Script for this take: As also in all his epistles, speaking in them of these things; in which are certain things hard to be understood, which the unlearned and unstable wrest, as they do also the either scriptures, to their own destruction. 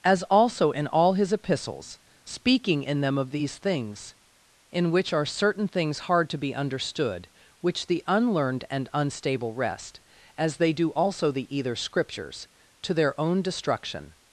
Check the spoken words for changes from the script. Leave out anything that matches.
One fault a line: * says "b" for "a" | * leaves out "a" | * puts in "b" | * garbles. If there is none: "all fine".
all fine